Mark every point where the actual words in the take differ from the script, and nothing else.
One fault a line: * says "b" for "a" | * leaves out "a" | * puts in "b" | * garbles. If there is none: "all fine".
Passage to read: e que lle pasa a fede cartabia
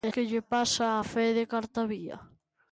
all fine